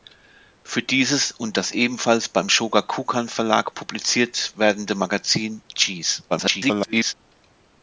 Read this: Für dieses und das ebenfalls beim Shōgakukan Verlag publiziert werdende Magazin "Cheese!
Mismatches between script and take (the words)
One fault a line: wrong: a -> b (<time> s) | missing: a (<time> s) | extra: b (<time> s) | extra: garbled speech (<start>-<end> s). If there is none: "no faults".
extra: garbled speech (6.3-7.1 s)